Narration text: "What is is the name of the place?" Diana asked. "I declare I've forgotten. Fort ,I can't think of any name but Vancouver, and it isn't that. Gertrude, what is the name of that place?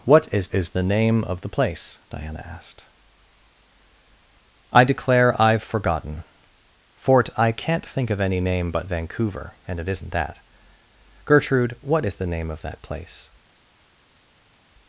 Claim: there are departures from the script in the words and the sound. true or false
false